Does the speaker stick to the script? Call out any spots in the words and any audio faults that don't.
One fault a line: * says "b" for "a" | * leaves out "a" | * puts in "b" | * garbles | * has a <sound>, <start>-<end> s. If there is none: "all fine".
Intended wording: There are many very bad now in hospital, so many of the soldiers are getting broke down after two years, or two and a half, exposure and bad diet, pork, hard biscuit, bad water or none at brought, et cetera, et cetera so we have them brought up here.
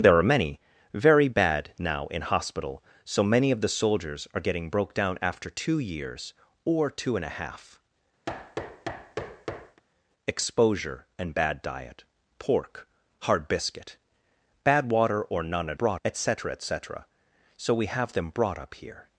* has a thud, 8.3-9.8 s